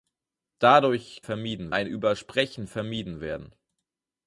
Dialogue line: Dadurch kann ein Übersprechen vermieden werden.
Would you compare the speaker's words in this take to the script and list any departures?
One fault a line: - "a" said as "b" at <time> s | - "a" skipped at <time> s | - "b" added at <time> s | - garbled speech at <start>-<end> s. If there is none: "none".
- "kann" said as "vermieden" at 1.2 s